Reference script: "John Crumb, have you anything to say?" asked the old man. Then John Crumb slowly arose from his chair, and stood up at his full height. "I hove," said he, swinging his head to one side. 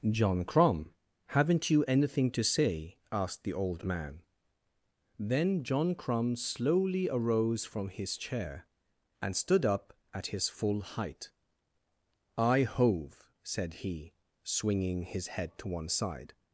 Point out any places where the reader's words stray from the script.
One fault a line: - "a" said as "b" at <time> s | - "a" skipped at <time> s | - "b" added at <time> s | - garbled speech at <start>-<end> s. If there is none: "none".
- "have" said as "haven't" at 1.3 s